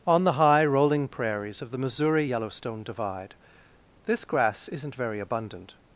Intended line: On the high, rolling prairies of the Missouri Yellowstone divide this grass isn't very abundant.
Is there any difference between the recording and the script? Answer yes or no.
no